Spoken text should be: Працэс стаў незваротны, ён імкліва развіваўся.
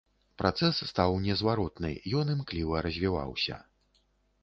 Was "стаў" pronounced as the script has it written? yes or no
yes